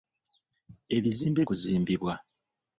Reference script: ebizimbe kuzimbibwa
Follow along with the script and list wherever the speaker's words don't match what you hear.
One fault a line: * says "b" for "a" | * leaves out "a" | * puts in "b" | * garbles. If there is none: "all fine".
all fine